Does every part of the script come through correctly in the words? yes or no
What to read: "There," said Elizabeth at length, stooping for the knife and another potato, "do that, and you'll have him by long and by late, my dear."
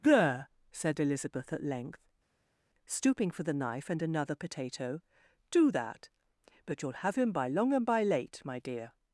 no